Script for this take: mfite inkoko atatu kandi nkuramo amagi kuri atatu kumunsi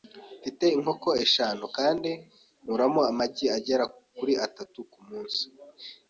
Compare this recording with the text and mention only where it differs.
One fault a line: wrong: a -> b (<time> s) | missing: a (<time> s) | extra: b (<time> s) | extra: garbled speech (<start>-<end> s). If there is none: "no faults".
wrong: atatu -> eshanu (1.2 s)
extra: agera (3.6 s)